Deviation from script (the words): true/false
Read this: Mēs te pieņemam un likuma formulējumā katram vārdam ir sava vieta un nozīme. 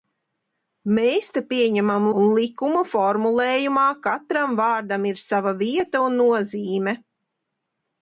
false